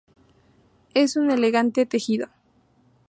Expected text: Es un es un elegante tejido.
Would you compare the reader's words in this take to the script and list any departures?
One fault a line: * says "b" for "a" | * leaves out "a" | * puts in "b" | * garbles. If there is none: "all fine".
* leaves out "es un"